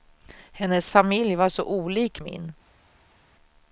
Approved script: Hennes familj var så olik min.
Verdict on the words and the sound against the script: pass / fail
pass